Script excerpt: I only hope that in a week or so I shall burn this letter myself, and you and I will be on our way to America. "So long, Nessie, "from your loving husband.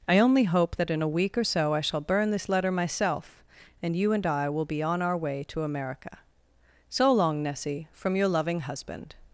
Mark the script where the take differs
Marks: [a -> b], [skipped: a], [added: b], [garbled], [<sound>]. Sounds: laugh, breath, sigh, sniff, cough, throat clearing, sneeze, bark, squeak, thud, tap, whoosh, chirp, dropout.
I only hope that in a week or so I shall burn this letter myself, and you and I will be on our way to America. "So long, Nessie, "from your loving husband.